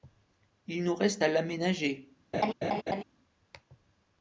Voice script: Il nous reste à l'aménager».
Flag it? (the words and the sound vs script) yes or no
yes